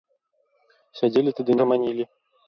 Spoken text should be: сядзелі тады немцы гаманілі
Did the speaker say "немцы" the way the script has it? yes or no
no